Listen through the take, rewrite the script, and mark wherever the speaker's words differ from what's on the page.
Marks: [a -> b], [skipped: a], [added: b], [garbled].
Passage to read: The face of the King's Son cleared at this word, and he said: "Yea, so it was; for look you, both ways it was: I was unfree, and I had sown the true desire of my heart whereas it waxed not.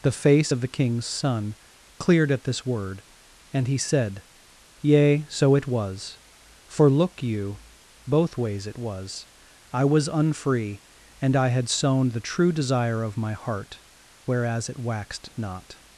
The face of the King's Son cleared at this word, and he said: "Yea, so it was; for look you, both ways it was: I was unfree, and I had sown the true desire of my heart whereas it waxed not.